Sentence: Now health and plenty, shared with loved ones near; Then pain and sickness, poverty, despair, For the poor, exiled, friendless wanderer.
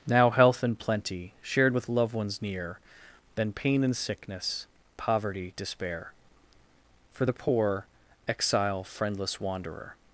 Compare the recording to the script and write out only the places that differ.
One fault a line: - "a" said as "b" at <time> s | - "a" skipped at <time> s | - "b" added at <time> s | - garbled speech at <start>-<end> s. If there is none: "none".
- "exiled" said as "exile" at 8.3 s